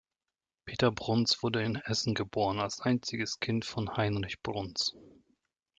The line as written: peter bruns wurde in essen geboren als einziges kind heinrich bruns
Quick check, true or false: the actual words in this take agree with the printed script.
false